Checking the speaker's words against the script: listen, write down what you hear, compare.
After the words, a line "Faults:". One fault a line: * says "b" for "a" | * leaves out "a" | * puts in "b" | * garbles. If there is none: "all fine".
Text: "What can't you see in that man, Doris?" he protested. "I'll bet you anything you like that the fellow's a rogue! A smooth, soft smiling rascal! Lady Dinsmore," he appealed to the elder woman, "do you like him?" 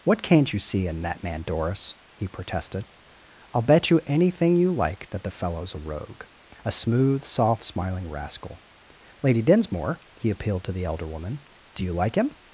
"What can't you see in that man, Doris?" he protested. "I'll bet you anything you like that the fellow's a rogue! A smooth, soft smiling rascal! Lady Dinsmore," he appealed to the elder woman, "do you like him?"
Faults:
all fine